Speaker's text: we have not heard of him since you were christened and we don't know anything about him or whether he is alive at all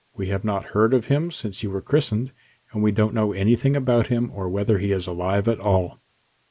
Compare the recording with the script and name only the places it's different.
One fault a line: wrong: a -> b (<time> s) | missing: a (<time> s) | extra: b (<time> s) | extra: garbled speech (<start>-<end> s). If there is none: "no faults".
no faults